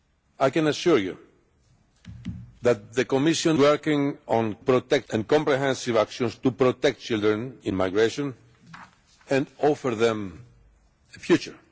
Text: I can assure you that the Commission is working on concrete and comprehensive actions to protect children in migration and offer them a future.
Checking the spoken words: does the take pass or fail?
fail